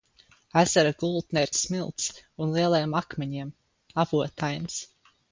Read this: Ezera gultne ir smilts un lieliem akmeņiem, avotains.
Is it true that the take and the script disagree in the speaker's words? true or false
false